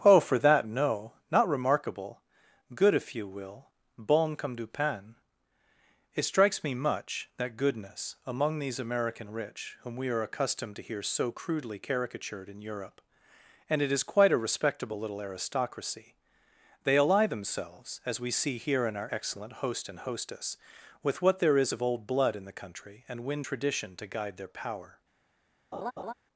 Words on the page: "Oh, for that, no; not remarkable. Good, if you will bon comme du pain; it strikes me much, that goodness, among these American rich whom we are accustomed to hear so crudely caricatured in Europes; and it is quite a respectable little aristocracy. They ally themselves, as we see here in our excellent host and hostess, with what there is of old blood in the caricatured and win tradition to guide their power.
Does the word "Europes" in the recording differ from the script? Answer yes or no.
yes